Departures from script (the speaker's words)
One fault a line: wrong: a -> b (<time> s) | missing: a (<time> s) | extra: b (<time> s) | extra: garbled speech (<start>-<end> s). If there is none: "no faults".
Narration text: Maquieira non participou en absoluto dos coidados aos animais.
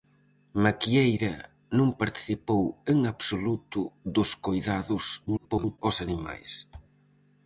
extra: garbled speech (5.3-5.8 s)